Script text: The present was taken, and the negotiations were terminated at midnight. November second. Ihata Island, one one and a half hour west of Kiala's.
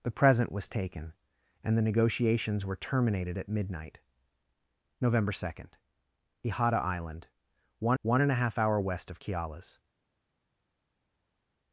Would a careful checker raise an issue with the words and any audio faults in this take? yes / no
no